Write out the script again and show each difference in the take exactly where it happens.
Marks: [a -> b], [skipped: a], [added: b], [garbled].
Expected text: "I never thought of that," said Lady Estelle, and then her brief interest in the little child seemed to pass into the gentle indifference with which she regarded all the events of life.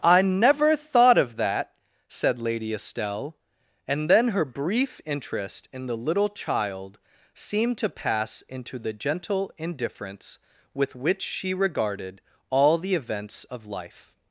"I never thought of that," said Lady Estelle, and then her brief interest in the little child seemed to pass into the gentle indifference with which she regarded all the events of life.